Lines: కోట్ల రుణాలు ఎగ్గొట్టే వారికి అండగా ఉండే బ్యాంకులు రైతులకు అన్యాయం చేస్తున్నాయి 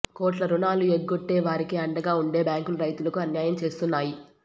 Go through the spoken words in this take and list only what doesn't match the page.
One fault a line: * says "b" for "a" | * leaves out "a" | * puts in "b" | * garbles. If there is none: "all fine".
all fine